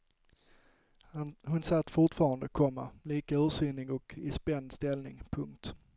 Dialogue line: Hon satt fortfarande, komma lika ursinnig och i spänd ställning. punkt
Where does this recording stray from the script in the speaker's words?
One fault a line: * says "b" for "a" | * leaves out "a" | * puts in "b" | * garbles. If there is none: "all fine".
all fine